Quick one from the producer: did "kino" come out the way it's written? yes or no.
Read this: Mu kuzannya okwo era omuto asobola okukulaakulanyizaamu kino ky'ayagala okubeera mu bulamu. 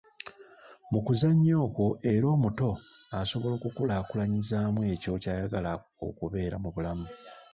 no